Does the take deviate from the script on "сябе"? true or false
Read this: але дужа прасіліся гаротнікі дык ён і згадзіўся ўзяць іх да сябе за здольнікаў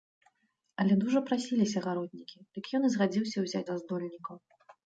true